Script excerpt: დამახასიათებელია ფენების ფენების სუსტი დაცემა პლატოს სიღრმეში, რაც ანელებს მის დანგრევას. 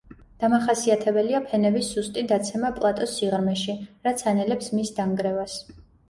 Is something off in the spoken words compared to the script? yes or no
yes